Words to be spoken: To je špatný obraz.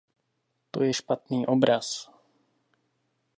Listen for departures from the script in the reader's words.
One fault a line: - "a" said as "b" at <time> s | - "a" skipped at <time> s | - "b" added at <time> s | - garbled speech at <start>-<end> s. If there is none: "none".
none